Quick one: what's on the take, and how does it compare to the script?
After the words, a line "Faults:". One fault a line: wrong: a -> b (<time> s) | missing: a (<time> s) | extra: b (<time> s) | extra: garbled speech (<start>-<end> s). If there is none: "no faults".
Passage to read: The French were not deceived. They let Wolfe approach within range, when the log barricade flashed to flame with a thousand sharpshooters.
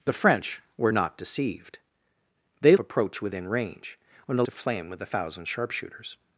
The French were not deceived. They approach within range, when the to flame with a thousand sharpshooters.
Faults:
missing: let Wolfe (2.7 s)
missing: log barricade flashed (4.4 s)